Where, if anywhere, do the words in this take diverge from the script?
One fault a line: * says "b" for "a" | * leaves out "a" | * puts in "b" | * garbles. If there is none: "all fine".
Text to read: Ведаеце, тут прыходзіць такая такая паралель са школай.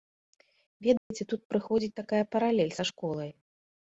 * leaves out "такая"